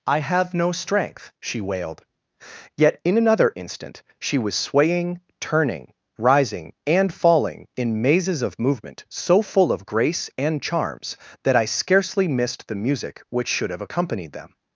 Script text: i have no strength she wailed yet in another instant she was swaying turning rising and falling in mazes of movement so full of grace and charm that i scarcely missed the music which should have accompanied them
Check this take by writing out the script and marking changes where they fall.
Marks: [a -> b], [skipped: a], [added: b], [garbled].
i have no strength she wailed yet in another instant she was swaying turning rising and falling in mazes of movement so full of grace and [charm -> charms] that i scarcely missed the music which should have accompanied them